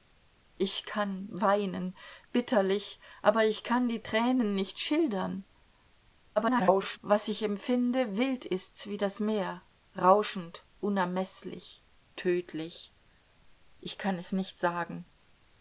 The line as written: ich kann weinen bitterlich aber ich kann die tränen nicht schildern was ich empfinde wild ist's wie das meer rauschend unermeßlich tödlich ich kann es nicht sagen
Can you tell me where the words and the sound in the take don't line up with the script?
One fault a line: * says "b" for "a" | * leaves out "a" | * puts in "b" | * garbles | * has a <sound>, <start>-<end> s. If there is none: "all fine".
* garbles